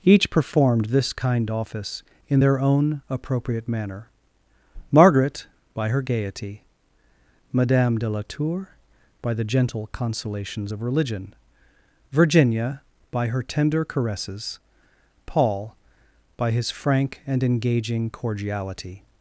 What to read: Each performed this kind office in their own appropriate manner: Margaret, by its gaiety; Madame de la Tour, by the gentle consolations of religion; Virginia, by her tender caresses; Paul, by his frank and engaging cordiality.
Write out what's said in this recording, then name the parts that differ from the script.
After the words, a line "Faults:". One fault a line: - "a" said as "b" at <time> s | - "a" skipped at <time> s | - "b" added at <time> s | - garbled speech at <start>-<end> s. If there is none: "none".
Each performed this kind office in their own appropriate manner: Margaret, by her gaiety; Madame de la Tour, by the gentle consolations of religion; Virginia, by her tender caresses; Paul, by his frank and engaging cordiality.
Faults:
- "its" said as "her" at 5.9 s